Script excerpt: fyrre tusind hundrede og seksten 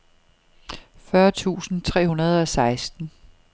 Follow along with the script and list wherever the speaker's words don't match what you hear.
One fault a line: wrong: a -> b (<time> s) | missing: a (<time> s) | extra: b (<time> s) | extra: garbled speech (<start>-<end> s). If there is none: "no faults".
extra: tre (1.8 s)